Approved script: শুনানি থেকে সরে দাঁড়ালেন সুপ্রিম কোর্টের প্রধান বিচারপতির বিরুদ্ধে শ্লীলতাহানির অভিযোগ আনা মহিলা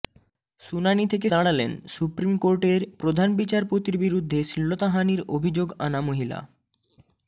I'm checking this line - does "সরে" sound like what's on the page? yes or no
no